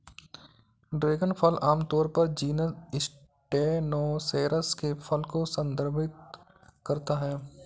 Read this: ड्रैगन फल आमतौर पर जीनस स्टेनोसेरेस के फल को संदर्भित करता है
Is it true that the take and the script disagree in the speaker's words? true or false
false